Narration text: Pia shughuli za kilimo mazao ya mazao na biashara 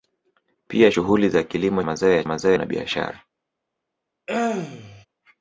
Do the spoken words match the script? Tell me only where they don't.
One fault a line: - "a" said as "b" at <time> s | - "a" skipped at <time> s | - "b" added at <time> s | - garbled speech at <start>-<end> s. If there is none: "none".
none